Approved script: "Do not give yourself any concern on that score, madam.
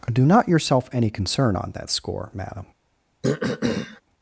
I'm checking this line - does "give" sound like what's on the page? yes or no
no